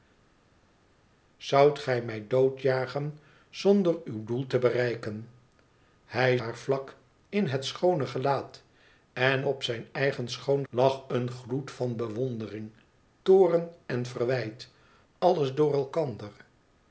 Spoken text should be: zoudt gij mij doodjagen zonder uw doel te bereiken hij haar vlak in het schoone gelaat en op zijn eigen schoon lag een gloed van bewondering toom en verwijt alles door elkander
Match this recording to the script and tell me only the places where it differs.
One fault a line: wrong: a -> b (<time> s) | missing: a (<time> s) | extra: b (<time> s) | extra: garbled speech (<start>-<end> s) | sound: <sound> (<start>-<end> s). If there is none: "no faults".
no faults